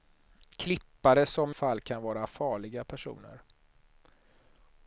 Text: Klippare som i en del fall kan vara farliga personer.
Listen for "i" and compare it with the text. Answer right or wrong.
wrong